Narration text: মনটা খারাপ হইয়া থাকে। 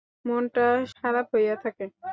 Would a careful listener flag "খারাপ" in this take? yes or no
no